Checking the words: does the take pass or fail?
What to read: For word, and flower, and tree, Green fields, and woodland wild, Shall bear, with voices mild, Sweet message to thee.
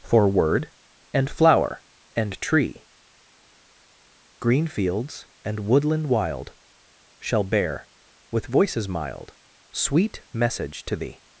pass